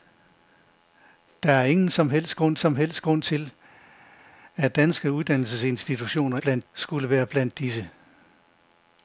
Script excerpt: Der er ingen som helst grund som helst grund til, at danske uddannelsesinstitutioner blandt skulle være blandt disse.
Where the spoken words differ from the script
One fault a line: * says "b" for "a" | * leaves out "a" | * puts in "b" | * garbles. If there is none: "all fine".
all fine